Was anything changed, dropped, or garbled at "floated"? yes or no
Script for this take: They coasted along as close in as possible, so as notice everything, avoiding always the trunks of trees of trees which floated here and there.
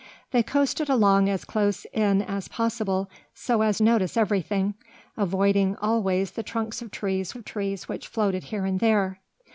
no